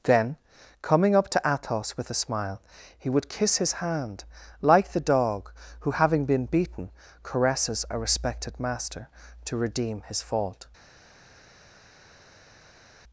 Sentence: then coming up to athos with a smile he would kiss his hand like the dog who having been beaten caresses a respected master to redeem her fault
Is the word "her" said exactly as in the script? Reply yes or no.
no